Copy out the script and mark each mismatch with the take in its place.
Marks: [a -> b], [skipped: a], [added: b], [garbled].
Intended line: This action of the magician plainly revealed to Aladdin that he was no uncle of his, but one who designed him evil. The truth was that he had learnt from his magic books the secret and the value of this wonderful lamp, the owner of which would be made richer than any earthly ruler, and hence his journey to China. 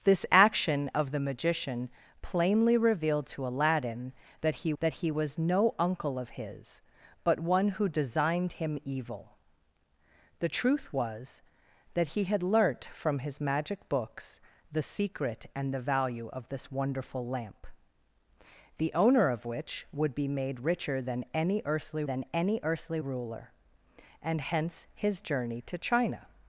This action of the magician plainly revealed to Aladdin that he [added: that he] was no uncle of his, but one who designed him evil. The truth was that he had learnt from his magic books the secret and the value of this wonderful lamp, the owner of which would be made richer than any earthly [added: than any earthly] ruler, and hence his journey to China.